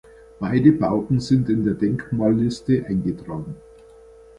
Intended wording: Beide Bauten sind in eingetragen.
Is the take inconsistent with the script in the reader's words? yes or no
yes